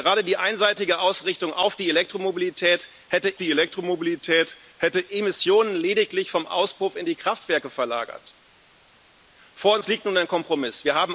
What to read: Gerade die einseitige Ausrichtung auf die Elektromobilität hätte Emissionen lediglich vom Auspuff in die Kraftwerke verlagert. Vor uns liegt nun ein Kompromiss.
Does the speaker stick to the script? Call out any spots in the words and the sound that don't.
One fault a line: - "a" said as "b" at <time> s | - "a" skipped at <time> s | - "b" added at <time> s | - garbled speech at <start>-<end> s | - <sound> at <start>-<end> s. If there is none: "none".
- "die Elektromobilität hätte" added at 3.4 s